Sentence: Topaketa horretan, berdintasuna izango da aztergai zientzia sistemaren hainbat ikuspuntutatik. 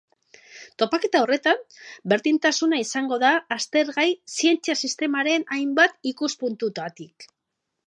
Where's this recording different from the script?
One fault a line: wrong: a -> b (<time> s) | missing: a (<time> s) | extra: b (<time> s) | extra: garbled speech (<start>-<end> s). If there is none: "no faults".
no faults